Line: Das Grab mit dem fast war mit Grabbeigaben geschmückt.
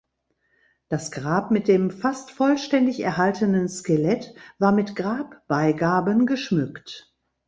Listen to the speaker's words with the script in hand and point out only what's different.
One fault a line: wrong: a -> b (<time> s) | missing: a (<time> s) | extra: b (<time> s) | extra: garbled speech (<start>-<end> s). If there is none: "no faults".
extra: vollständig erhaltenen Skelett (2.3 s)